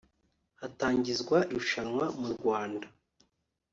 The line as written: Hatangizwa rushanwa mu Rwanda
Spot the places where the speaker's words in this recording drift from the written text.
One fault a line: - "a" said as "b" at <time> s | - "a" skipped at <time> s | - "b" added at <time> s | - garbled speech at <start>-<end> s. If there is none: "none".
none